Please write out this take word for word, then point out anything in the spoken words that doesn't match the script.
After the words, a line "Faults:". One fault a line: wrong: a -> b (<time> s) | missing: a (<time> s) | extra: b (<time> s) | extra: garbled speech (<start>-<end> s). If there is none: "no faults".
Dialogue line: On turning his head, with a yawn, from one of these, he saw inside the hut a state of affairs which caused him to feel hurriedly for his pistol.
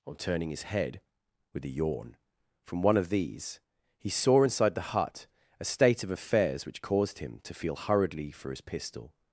On turning his head, with a yawn, from one of these, he saw inside the hut a state of affairs which caused him to feel hurriedly for his pistol.
Faults:
no faults